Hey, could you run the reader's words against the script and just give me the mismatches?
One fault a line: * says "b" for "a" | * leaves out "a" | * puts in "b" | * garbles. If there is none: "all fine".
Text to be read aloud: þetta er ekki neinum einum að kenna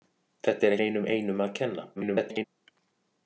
* leaves out "ekki"
* garbles